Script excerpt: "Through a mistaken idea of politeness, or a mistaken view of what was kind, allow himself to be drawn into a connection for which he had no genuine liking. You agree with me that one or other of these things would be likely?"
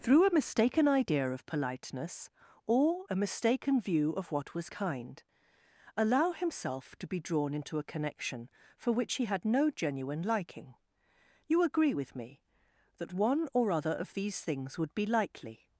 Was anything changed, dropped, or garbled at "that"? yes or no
no